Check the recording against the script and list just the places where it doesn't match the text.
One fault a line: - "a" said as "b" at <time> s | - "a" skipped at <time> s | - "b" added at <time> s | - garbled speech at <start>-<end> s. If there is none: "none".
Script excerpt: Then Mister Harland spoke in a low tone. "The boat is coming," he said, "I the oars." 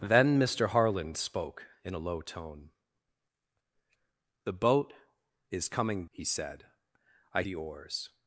none